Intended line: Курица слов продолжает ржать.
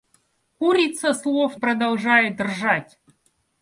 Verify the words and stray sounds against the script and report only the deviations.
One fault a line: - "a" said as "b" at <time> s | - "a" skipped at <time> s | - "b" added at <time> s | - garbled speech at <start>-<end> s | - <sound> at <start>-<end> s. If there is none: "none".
none